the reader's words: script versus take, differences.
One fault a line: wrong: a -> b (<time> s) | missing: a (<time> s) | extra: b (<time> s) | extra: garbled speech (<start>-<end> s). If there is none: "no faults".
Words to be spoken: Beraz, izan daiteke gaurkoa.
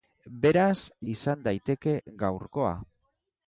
no faults